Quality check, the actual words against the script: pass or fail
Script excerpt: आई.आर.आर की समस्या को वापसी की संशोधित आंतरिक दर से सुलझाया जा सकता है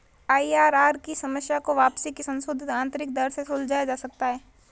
pass